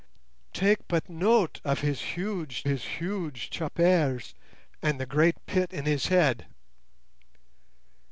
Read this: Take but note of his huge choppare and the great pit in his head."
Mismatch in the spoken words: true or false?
true